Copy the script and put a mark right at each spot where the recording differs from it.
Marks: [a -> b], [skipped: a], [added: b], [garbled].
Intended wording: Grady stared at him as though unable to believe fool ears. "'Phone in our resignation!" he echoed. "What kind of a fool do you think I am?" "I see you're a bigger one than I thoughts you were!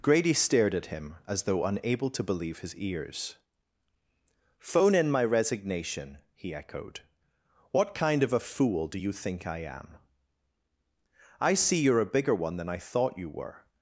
Grady stared at him as though unable to believe [fool -> his] ears. "'Phone in [our -> my] resignation!" he echoed. "What kind of a fool do you think I am?" "I see you're a bigger one than I [thoughts -> thought] you were!